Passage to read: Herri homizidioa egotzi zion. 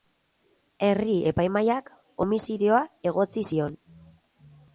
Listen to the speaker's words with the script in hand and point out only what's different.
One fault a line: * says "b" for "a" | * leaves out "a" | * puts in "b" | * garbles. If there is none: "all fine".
* puts in "epaimahaiak"